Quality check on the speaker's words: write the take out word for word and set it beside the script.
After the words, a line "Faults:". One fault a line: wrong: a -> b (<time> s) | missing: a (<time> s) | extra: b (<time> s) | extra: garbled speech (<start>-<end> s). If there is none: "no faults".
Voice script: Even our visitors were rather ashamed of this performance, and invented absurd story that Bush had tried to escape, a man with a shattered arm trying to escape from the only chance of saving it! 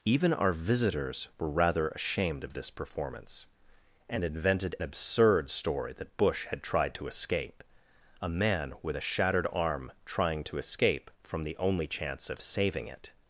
Even our visitors were rather ashamed of this performance, and invented absurd story that Bush had tried to escape, a man with a shattered arm trying to escape from the only chance of saving it!
Faults:
no faults